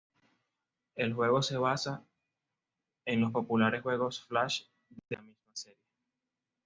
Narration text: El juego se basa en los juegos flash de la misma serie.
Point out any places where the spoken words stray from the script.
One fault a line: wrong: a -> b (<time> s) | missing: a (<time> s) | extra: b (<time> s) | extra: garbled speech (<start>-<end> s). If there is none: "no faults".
extra: populares (3.3 s)